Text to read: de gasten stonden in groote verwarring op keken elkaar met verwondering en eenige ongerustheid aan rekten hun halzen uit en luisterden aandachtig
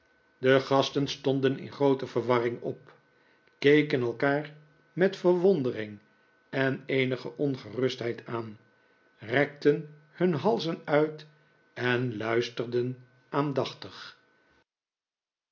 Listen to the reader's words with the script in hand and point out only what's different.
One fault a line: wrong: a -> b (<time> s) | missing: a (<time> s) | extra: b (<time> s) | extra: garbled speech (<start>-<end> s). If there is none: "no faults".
no faults